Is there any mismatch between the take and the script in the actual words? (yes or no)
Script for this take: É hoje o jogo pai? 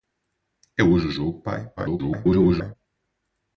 yes